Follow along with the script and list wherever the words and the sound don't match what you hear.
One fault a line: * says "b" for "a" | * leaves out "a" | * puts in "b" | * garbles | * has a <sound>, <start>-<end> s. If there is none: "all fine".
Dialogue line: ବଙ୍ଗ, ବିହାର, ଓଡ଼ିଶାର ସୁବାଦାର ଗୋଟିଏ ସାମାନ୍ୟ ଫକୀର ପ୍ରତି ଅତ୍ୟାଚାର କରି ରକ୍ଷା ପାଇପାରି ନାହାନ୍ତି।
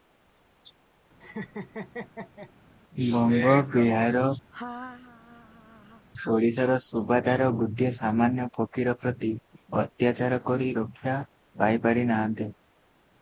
* has a laugh, 1.2-2.5 s
* has a laugh, 4.5-6.1 s